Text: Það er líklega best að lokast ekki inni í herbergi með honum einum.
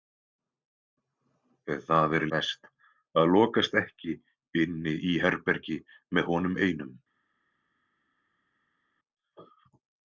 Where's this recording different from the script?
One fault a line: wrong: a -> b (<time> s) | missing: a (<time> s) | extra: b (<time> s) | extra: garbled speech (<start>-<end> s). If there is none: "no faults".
missing: líklega (2.2 s)